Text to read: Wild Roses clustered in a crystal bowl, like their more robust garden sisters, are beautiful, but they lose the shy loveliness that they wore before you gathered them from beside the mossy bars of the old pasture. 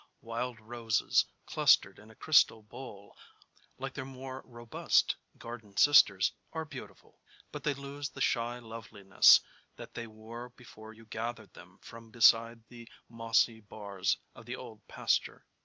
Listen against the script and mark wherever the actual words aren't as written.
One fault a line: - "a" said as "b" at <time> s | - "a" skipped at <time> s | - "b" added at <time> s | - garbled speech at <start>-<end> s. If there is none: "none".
none